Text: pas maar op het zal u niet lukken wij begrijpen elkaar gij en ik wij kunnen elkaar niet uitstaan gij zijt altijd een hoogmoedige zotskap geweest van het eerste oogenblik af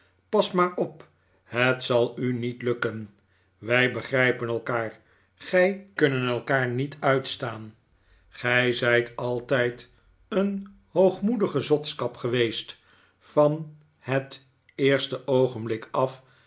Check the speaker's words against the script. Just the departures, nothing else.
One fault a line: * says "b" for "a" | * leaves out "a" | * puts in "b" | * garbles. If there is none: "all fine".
* leaves out "en ik wij"